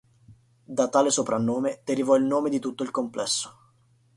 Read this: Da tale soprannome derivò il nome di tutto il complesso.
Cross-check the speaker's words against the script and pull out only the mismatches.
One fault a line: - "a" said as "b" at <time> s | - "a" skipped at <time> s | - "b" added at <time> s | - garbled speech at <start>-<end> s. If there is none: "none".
none